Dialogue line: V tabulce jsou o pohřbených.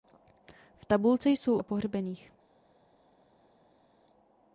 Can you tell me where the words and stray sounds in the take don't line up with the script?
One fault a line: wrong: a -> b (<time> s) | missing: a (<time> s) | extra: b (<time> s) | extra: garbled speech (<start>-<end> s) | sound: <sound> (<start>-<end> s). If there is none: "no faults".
no faults